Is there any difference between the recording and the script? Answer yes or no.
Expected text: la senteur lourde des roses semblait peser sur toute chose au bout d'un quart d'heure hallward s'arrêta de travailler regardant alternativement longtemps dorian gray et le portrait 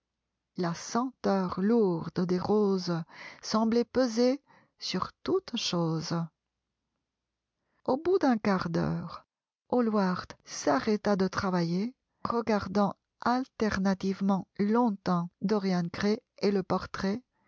no